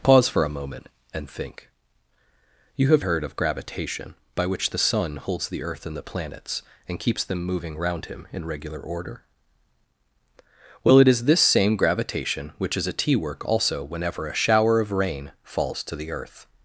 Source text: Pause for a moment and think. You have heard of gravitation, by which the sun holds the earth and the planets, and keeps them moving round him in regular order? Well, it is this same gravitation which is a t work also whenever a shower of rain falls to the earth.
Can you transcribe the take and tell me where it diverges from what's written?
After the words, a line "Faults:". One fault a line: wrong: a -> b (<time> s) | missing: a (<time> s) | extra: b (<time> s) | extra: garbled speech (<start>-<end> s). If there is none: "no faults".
Pause for a moment and think. You have heard of gravitation, by which the sun holds the earth and the planets, and keeps them moving round him in regular order? Well, it is this same gravitation which is a t work also whenever a shower of rain falls to the earth.
Faults:
no faults